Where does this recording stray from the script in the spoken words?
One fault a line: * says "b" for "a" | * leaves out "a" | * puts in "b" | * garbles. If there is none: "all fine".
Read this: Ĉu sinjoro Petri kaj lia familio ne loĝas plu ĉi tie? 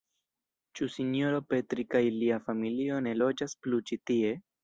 all fine